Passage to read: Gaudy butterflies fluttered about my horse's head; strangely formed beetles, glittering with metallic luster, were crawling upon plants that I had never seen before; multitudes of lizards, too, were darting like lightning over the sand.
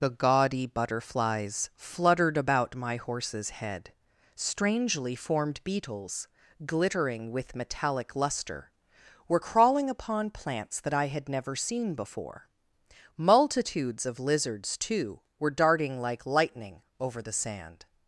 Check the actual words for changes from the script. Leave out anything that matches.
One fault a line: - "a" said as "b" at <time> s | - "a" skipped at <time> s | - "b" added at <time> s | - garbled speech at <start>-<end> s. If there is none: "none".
- "the" added at 0.0 s